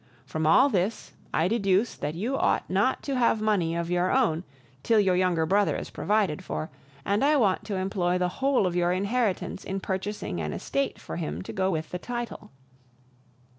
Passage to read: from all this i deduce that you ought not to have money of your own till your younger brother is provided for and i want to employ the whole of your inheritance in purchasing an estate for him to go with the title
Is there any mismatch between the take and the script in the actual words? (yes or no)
no